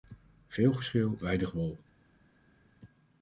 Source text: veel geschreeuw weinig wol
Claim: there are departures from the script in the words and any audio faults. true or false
false